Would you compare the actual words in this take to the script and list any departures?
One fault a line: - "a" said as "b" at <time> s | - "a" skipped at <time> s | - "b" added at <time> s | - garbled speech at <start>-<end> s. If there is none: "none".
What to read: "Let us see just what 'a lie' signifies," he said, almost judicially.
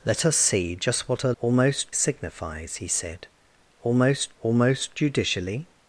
- "lie" said as "almost" at 1.4 s
- "almost" added at 4.4 s